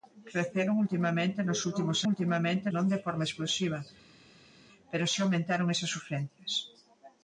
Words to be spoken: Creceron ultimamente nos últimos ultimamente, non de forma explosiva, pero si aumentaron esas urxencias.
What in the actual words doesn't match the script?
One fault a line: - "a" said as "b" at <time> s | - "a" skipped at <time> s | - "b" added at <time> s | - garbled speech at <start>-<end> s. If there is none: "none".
none